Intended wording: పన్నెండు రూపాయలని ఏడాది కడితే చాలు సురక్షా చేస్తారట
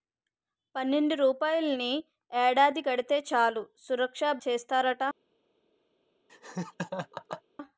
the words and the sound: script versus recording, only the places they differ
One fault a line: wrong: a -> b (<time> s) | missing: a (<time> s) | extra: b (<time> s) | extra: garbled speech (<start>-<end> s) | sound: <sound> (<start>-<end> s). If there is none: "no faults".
sound: laugh (6.3-7.4 s)